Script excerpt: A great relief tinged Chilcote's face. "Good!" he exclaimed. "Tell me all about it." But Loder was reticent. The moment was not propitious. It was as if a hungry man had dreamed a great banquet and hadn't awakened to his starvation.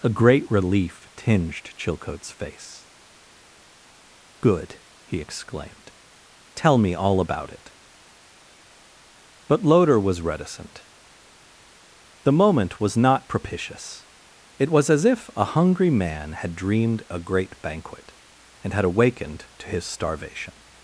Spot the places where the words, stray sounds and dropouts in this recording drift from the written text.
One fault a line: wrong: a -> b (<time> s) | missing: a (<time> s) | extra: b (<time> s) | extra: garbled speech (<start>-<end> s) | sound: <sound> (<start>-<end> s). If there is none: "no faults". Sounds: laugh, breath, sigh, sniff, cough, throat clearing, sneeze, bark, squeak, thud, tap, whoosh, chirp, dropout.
wrong: hadn't -> had (18.7 s)